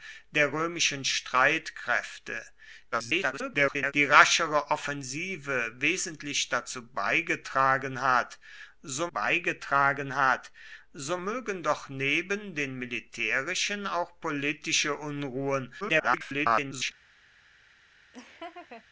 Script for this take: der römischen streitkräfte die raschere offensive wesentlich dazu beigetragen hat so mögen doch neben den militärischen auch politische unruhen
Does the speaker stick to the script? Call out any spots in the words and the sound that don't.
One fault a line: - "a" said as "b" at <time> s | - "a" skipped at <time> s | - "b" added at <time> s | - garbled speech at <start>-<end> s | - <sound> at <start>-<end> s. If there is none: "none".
- garbled speech at 2.9-3.9 s
- "beigetragen hat so" added at 9.1 s
- garbled speech at 15.8-16.9 s
- laugh at 18.1-18.9 s